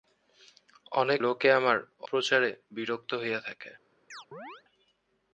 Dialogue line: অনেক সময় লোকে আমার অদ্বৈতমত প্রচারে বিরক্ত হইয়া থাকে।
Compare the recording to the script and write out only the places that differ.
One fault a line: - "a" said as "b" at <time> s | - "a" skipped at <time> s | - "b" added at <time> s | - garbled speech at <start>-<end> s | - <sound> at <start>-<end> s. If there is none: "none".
- "সময়" skipped at 1.2 s
- "অদ্বৈতমত" skipped at 1.8 s
- chirp at 4.1-4.6 s